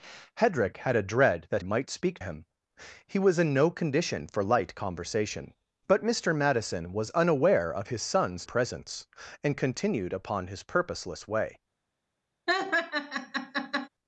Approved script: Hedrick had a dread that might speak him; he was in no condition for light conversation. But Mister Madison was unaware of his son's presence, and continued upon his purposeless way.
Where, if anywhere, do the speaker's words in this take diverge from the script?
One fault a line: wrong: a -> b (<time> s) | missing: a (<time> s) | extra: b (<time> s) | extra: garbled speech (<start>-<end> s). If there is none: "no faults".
no faults